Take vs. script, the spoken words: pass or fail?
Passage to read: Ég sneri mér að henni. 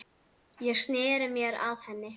pass